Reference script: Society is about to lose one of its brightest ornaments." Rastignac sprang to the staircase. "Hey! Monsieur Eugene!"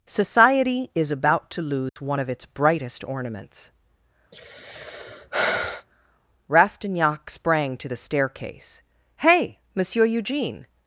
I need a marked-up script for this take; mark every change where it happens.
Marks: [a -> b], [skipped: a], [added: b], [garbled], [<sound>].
Society is about to lose [dropout] one of its brightest ornaments." [sigh] Rastignac sprang to the staircase. "Hey! Monsieur Eugene!"